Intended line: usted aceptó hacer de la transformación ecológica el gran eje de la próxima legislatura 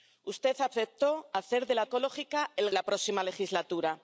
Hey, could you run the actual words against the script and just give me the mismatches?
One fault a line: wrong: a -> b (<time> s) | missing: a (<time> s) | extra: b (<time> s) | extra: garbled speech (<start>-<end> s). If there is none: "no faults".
missing: transformación (1.9 s)
missing: gran eje de (2.7 s)